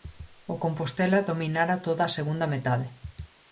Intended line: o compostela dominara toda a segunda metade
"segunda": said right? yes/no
yes